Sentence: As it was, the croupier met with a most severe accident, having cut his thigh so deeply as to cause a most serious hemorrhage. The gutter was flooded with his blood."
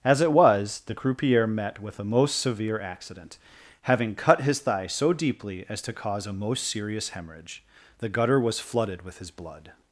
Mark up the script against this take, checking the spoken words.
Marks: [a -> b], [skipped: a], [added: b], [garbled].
As it was, the croupier met with a most severe accident, having cut his thigh so deeply as to cause a most serious hemorrhage. The gutter was flooded with his blood."